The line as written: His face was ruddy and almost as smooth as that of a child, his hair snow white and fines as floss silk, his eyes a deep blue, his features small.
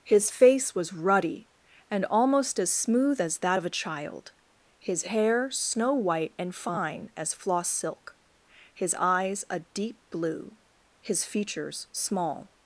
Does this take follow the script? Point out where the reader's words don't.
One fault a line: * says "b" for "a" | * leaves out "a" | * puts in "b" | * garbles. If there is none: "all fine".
* says "fine" for "fines"